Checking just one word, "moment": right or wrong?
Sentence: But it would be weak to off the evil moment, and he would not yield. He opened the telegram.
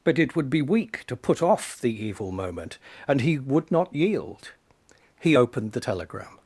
right